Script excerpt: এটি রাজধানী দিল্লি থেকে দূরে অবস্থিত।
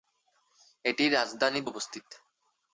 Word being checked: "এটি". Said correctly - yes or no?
yes